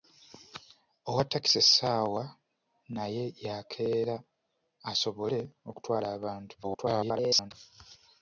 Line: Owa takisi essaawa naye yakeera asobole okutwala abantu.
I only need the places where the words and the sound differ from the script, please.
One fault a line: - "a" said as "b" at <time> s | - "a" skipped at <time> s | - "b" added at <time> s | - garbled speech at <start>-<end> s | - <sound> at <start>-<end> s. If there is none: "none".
- garbled speech at 6.6-7.5 s